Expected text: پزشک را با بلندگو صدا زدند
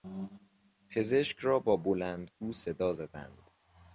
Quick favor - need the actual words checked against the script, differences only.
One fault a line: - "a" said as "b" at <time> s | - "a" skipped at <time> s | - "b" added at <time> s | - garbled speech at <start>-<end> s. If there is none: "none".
none